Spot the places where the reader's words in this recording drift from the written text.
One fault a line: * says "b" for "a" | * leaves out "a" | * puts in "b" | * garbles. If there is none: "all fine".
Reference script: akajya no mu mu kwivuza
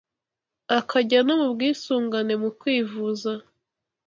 * puts in "bwisungane"